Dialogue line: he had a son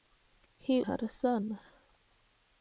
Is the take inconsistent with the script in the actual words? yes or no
no